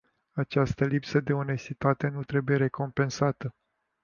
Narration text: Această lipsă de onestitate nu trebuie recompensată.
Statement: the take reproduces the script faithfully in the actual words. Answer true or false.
true